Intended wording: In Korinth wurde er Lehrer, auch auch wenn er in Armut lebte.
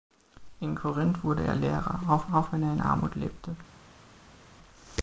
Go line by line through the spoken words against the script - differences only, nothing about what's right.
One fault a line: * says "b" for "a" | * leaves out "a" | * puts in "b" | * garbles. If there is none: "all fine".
all fine